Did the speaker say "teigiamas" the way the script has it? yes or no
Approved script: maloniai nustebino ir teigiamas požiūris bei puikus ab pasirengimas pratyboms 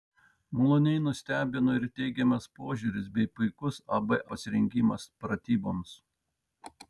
yes